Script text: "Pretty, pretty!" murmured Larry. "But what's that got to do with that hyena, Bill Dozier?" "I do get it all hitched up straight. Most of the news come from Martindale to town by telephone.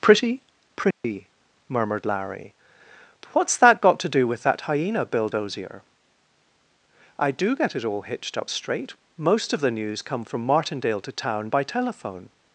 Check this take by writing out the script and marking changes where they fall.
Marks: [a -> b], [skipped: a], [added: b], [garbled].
"Pretty, pretty!" murmured Larry. "But what's that got to do with that hyena, Bill Dozier?" "I do get it all hitched up straight. Most of the news come from Martindale to town by telephone.